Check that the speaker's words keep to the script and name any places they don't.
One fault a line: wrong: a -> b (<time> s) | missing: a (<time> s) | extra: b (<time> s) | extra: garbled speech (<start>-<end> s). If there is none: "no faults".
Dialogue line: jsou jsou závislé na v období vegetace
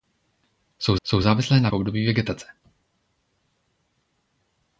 no faults